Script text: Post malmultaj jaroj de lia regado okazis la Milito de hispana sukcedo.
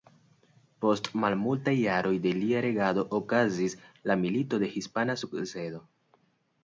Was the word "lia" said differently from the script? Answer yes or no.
no